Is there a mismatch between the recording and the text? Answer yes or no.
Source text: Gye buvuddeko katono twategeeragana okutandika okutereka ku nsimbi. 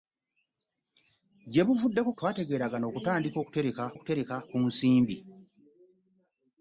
yes